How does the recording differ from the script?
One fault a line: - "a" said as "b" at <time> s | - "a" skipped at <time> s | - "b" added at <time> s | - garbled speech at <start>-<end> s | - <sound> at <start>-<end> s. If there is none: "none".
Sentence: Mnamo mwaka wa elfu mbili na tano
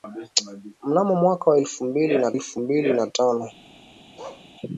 - "elfu mbili na" added at 2.3 s
- bark at 4.2-4.5 s